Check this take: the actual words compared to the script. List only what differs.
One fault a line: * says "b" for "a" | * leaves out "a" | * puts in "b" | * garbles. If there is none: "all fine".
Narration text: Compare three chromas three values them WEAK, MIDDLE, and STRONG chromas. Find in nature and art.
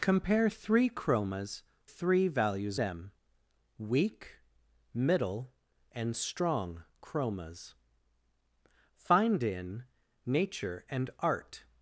all fine